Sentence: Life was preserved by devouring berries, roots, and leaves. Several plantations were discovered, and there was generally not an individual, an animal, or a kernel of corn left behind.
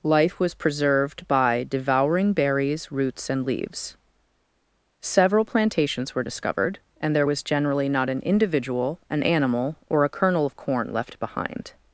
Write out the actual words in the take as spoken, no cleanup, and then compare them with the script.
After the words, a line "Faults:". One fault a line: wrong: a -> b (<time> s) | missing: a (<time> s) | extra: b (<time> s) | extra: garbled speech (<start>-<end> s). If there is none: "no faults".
Life was preserved by devouring berries, roots, and leaves. Several plantations were discovered, and there was generally not an individual, an animal, or a kernel of corn left behind.
Faults:
no faults